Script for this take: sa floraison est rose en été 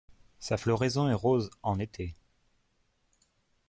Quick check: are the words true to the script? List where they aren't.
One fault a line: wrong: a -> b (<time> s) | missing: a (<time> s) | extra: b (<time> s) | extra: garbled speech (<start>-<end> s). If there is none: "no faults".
no faults